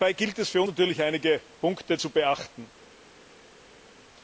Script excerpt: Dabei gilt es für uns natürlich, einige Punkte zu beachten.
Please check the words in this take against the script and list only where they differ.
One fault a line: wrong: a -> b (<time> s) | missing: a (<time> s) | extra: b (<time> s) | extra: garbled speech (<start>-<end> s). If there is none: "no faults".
missing: uns (0.6 s)